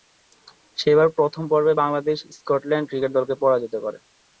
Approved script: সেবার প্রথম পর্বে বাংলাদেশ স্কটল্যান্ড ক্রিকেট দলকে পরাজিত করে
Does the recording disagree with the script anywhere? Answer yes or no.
no